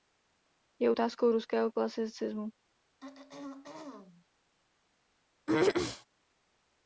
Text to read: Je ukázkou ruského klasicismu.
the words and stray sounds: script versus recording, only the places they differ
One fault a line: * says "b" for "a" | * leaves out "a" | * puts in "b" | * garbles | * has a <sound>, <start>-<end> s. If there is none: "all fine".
* has a throat clearing, 3.0-4.2 s
* has a throat clearing, 5.5-6.1 s